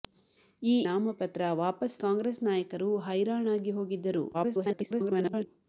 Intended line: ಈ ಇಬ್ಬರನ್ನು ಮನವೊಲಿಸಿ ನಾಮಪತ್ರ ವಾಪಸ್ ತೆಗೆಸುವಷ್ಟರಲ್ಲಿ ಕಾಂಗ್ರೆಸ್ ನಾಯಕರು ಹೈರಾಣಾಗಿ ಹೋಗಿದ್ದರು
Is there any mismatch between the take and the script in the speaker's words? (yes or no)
yes